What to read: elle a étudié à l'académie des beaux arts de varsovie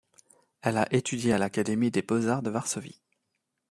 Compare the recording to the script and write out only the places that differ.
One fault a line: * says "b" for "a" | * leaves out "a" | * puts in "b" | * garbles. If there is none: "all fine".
all fine